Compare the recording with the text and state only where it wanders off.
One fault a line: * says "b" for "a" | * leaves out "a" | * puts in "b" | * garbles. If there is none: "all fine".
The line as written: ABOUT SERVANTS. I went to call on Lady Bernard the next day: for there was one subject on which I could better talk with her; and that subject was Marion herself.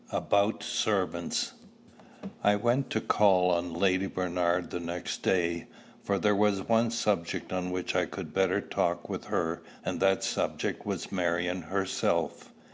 all fine